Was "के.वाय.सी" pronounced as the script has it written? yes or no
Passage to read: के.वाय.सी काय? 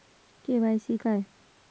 yes